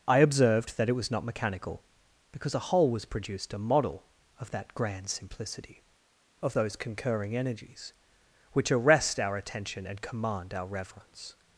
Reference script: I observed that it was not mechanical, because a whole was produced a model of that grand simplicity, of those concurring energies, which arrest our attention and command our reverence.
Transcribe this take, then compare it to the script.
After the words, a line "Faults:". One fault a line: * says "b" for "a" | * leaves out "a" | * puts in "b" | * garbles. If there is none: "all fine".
I observed that it was not mechanical, because a whole was produced a model of that grand simplicity, of those concurring energies, which arrest our attention and command our reverence.
Faults:
all fine